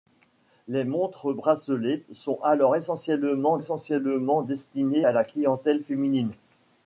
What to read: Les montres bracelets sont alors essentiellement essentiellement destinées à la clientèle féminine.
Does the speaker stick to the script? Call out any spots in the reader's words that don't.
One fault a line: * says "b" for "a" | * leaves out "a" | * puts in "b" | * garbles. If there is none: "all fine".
all fine